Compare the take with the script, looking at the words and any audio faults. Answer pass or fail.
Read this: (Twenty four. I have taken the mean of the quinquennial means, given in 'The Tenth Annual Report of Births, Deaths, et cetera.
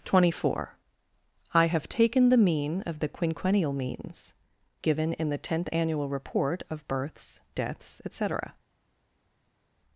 pass